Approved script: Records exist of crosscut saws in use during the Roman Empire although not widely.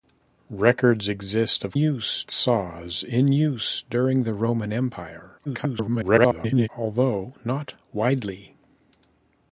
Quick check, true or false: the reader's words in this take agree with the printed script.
false